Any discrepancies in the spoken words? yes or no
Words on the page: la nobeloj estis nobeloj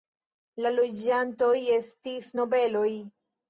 yes